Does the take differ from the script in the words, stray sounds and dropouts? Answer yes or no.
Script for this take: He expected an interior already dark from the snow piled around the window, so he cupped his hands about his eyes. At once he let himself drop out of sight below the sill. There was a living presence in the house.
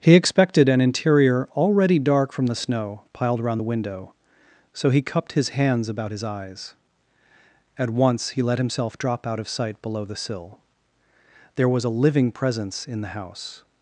no